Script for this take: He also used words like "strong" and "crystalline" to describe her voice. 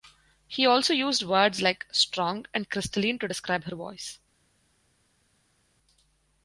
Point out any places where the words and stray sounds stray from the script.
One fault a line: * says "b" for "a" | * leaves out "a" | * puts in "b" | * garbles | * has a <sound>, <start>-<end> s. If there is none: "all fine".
all fine